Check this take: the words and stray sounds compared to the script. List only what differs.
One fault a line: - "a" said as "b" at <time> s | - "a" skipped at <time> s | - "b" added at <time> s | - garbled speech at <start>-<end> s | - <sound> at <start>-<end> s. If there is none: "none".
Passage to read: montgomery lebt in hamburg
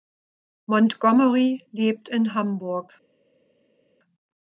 none